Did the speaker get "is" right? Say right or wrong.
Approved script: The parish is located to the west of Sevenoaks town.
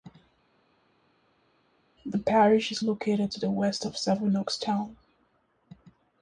right